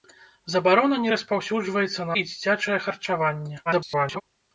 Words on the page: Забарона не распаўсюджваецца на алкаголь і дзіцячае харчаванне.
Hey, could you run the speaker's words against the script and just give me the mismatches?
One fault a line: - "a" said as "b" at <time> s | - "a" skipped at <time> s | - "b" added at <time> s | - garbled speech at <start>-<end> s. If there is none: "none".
- "алкаголь" skipped at 2.2 s
- garbled speech at 3.7-4.2 s